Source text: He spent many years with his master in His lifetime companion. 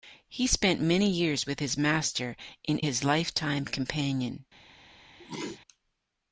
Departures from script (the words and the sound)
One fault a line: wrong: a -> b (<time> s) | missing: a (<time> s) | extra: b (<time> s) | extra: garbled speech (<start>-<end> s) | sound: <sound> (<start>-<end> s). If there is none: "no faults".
sound: sneeze (5.2-5.6 s)